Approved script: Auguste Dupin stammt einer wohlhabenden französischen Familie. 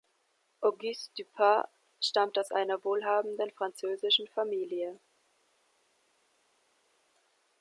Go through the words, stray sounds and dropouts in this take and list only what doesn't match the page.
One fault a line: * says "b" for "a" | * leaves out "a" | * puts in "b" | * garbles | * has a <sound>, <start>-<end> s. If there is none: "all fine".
* puts in "aus"